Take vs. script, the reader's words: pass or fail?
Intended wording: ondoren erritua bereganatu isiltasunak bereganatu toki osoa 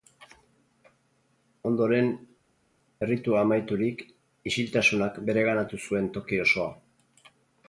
fail